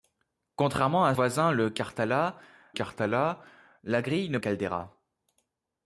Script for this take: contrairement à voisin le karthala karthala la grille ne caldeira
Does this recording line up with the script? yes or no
yes